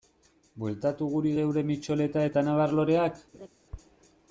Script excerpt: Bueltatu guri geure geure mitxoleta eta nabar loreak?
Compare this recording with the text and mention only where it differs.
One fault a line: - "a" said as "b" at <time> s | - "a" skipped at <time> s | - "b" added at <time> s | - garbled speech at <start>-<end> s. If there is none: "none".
- "geure" skipped at 1.6 s